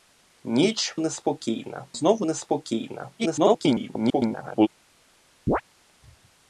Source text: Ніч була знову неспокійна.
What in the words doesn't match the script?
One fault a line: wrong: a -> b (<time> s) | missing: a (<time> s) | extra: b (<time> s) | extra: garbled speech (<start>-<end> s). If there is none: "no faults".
wrong: була -> неспокійна (1.0 s)
extra: garbled speech (3.2-4.7 s)